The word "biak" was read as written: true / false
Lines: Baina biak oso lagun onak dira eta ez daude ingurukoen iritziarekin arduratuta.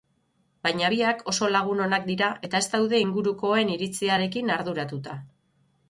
true